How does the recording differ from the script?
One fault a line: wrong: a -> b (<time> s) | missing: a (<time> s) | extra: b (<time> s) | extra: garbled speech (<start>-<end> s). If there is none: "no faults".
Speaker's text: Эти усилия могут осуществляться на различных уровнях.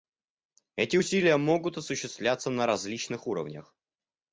no faults